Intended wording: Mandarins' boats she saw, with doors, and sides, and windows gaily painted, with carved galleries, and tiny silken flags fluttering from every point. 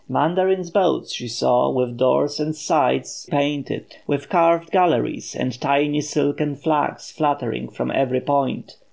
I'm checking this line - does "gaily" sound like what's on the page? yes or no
no